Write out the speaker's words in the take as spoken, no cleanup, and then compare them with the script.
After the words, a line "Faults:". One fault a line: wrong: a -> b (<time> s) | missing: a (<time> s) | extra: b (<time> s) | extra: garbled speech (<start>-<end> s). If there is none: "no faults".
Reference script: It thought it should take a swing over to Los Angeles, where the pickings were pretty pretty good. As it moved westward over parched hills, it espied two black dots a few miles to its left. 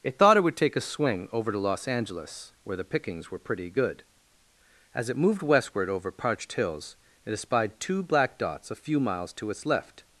It thought it would take a swing over to Los Angeles, where the pickings were pretty good. As it moved westward over parched hills, it espied two black dots a few miles to its left.
Faults:
wrong: should -> would (0.4 s)
missing: pretty (3.7 s)